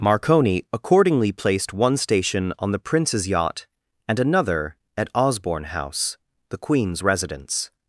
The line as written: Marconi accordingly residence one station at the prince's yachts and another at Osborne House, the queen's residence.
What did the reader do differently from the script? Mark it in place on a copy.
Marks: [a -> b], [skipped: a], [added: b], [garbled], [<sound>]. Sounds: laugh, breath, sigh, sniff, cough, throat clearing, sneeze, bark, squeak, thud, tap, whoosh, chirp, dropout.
Marconi accordingly [residence -> placed] one station [at -> on] the prince's [yachts -> yacht] and another at Osborne House, the queen's residence.